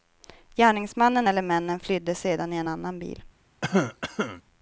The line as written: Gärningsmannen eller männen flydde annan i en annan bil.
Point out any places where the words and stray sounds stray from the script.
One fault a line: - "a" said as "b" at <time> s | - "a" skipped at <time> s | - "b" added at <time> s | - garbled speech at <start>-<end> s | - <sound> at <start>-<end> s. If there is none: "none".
- "annan" said as "sedan" at 2.1 s
- cough at 3.6-4.4 s